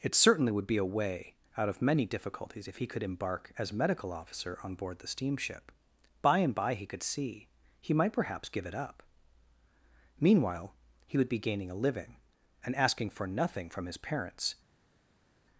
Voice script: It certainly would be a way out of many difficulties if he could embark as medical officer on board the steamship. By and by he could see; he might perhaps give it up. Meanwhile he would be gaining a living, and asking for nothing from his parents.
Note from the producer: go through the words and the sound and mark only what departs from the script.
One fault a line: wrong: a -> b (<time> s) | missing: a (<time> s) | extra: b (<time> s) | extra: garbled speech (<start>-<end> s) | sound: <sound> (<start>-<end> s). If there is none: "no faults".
no faults